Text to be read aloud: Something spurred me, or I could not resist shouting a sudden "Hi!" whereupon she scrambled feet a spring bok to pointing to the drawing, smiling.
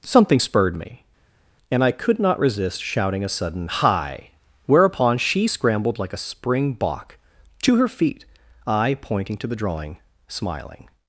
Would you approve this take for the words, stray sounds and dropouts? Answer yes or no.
no